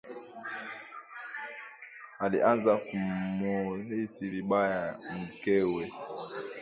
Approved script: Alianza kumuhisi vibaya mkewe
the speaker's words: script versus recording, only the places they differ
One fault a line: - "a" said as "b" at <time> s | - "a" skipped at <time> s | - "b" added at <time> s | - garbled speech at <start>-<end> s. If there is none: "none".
none